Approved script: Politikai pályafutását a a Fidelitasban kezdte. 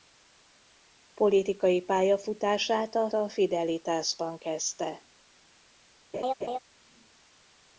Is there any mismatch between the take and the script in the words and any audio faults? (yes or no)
yes